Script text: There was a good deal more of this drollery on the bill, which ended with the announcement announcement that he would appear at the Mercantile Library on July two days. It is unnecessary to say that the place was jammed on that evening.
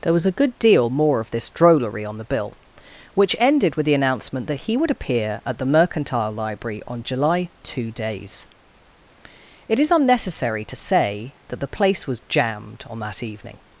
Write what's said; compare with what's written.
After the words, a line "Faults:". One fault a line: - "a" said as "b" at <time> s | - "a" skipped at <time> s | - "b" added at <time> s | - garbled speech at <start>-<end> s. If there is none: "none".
There was a good deal more of this drollery on the bill, which ended with the announcement that he would appear at the Mercantile Library on July two days. It is unnecessary to say that the place was jammed on that evening.
Faults:
- "announcement" skipped at 4.5 s